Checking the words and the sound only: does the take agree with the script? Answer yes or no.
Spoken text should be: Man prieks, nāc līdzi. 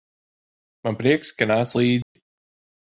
no